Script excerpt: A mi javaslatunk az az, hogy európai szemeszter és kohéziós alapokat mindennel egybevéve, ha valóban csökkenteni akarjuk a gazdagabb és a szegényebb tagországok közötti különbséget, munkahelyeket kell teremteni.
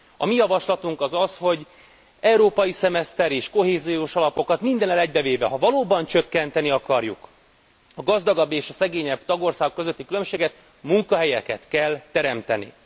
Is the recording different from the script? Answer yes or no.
no